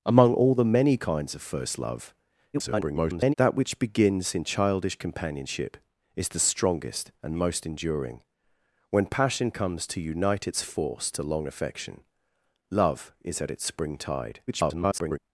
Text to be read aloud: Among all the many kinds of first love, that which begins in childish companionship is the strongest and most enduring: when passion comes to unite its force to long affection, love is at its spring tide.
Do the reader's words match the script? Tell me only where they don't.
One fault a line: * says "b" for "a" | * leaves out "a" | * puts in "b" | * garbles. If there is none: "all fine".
* garbles
* garbles